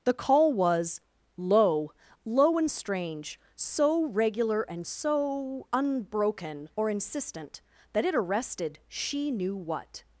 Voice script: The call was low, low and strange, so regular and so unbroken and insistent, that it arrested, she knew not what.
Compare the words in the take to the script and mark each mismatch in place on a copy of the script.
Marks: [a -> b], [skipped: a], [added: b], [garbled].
The call was low, low and strange, so regular and so unbroken [and -> or] insistent, that it arrested, she knew [skipped: not] what.